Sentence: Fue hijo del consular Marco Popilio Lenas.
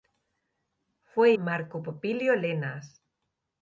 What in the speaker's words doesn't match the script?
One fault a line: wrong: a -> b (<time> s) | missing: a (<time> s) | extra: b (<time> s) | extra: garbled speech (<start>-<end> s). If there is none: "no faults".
missing: hijo del consular (1.3 s)